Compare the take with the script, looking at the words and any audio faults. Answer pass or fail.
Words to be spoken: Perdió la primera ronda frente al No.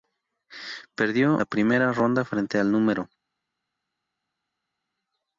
pass